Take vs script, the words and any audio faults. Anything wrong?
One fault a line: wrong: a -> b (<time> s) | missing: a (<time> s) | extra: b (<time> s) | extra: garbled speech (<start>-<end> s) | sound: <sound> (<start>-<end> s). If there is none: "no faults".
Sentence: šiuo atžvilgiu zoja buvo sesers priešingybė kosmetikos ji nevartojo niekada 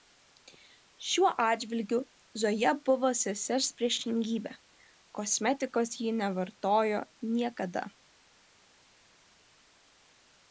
no faults